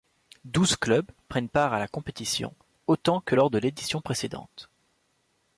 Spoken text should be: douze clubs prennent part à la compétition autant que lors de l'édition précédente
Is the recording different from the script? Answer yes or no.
no